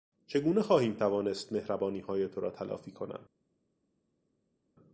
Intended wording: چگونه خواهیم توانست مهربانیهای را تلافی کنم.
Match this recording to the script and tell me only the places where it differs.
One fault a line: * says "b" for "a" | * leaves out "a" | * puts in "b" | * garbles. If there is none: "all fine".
* puts in "تو"